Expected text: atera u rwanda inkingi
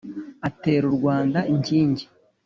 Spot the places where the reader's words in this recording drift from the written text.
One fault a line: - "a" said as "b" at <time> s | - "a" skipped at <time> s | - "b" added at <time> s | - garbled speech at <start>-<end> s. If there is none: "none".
none